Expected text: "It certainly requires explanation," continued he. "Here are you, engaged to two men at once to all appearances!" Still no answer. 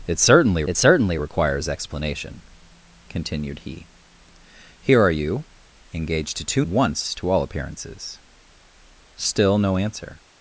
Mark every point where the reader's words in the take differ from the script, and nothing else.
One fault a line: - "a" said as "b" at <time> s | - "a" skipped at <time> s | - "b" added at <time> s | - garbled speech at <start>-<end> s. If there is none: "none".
- "it certainly" added at 0.7 s
- "men at" skipped at 6.6 s